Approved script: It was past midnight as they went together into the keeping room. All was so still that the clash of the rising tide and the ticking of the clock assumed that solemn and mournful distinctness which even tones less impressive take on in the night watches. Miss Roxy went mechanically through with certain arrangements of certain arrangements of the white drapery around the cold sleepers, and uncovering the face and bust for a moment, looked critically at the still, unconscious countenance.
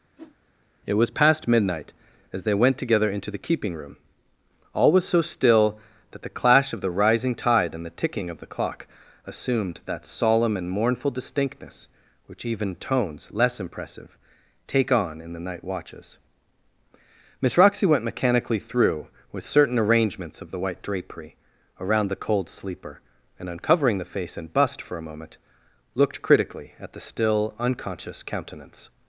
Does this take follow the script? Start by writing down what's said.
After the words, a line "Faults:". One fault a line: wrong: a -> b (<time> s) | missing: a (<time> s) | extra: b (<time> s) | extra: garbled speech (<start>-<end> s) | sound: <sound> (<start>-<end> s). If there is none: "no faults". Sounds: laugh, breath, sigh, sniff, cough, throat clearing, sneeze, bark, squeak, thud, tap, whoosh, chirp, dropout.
It was past midnight as they went together into the keeping room. All was so still that the clash of the rising tide and the ticking of the clock assumed that solemn and mournful distinctness which even tones less impressive take on in the night watches. Miss Roxy went mechanically through with certain arrangements of the white drapery around the cold sleeper, and uncovering the face and bust for a moment, looked critically at the still, unconscious countenance.
Faults:
sound: whoosh (0.2-0.4 s)
missing: certain arrangements of (20.5 s)
wrong: sleepers -> sleeper (22.5 s)